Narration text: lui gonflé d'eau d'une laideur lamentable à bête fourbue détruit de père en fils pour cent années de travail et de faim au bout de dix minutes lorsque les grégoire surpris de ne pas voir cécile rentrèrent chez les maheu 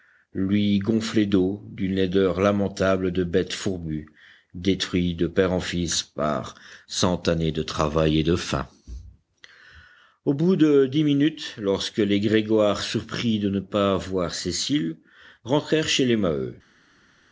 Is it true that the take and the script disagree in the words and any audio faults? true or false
true